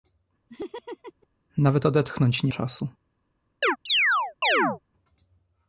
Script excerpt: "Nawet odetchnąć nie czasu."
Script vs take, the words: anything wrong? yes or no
no